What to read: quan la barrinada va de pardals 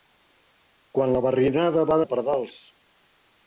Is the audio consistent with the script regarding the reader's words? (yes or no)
yes